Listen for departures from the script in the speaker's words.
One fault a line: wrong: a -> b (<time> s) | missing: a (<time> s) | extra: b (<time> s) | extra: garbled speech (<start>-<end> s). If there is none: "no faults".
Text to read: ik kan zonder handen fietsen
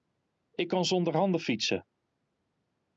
no faults